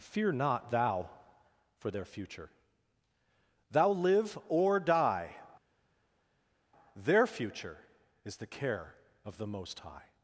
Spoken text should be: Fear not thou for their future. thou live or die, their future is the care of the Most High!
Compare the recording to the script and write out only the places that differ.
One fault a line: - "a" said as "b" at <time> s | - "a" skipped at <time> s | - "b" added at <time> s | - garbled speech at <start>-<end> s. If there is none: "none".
none